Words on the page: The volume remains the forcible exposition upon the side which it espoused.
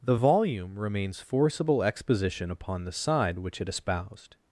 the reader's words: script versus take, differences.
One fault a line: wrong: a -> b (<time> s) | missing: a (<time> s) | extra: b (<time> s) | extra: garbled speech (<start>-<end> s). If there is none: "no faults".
missing: the (1.2 s)